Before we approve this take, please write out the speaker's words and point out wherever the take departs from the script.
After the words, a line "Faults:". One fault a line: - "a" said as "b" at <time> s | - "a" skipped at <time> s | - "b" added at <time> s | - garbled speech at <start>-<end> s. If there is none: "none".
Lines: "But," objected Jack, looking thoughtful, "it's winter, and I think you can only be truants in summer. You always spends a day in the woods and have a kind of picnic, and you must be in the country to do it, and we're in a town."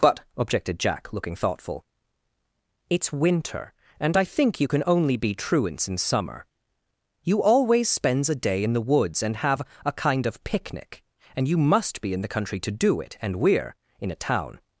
"But," objected Jack, looking thoughtful, "it's winter, and I think you can only be truants in summer. You always spends a day in the woods and have a kind of picnic, and you must be in the country to do it, and we're in a town."
Faults:
none